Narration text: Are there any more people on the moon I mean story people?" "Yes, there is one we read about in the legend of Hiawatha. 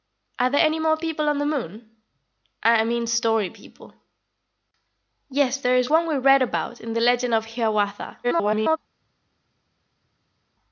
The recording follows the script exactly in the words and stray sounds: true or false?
false